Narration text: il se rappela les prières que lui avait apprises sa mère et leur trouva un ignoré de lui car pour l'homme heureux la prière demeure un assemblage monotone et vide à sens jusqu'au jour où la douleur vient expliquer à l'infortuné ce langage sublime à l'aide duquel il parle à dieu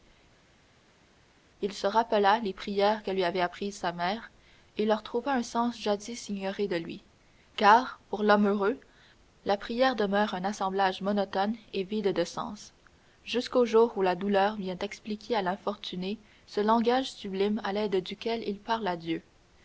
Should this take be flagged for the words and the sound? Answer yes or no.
yes